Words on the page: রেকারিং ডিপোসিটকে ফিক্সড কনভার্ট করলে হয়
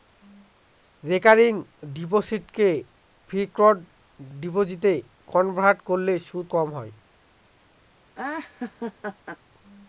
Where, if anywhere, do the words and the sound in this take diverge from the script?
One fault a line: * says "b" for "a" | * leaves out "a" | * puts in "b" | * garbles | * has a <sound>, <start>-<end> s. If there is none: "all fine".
* puts in "ডিপোজিটে"
* puts in "সুদ কম"
* has a laugh, 8.1-9.4 s